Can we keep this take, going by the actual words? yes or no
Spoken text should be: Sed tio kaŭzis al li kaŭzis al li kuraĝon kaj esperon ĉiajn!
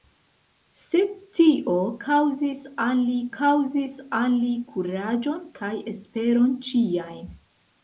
yes